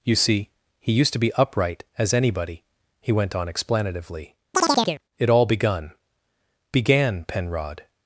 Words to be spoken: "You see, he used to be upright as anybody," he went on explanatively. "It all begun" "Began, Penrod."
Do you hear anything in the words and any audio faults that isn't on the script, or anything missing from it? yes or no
yes